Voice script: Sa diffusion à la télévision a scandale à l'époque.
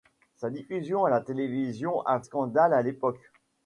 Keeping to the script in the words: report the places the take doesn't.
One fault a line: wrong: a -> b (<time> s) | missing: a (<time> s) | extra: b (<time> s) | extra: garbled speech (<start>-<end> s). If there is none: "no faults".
no faults